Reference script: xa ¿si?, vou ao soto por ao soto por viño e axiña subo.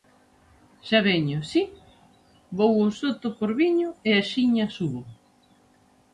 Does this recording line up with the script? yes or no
no